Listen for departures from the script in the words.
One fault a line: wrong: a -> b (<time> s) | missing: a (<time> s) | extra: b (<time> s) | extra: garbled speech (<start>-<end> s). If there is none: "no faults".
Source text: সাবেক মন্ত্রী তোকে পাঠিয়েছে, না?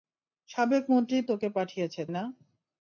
no faults